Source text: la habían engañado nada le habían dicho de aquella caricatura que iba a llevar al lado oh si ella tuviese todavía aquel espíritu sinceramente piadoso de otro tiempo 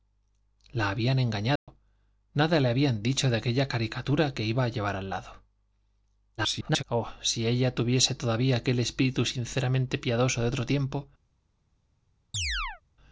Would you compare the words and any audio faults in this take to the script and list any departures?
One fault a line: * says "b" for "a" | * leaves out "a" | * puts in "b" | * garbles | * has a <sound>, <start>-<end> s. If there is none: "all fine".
* has a dropout, 1.6-1.7 s
* garbles
* has a chirp, 12.3-12.8 s